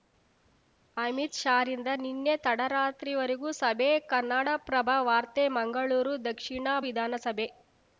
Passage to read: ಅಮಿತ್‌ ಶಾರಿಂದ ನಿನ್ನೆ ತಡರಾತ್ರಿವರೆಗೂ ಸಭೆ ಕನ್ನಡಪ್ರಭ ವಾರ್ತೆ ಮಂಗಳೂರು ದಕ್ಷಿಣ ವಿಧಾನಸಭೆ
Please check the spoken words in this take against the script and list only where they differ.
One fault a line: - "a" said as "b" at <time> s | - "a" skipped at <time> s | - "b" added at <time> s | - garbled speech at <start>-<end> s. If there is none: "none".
none